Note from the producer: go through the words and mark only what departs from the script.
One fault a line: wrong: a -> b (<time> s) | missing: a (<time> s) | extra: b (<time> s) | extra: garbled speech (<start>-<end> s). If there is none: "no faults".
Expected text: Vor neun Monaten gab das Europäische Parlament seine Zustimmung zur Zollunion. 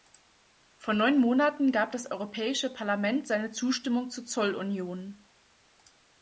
no faults